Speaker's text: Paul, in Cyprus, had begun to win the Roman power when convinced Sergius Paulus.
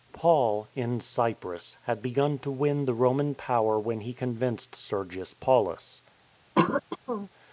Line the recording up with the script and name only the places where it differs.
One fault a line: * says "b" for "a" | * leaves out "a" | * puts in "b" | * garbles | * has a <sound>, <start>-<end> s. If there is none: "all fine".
* puts in "he"
* has a throat clearing, 6.6-7.3 s